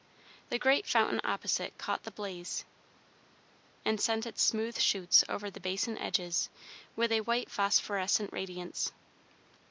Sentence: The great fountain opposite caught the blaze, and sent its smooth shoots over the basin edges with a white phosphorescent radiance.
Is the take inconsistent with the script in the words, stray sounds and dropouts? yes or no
no